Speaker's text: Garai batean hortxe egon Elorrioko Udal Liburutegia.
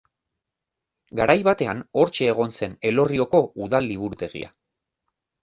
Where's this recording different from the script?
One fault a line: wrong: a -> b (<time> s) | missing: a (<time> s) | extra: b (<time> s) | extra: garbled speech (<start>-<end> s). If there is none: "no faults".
extra: zen (2.6 s)